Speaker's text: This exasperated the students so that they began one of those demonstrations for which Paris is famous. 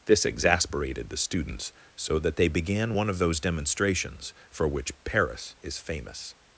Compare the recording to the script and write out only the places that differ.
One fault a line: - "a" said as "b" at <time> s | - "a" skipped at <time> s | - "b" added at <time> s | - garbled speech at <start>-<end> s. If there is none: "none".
none